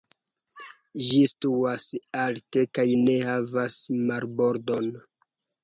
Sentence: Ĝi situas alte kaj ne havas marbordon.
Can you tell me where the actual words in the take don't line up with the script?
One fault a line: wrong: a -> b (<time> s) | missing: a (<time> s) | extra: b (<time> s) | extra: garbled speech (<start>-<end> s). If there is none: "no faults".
no faults